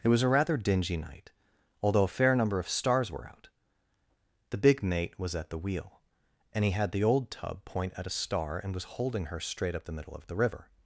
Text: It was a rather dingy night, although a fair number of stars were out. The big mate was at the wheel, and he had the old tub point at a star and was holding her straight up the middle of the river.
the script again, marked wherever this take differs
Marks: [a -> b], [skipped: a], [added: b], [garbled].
It was a rather dingy night, although a fair number of stars were out. The big mate was at the wheel, and he had the old tub point at a star and was holding her straight up the middle of the river.